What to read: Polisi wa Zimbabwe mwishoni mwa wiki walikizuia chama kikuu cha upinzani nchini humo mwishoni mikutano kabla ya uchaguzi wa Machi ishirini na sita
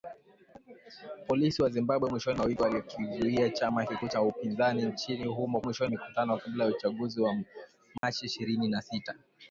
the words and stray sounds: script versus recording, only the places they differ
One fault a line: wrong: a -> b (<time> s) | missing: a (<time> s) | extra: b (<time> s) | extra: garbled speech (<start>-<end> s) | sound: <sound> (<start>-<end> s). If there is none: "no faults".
sound: dropout (8.0-8.0 s)